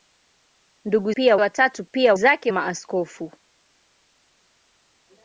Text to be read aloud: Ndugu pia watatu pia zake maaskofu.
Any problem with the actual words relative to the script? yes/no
no